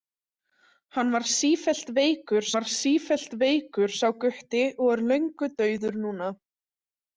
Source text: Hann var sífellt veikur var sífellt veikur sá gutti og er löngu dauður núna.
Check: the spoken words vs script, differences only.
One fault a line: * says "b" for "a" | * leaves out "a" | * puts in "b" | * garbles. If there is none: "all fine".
all fine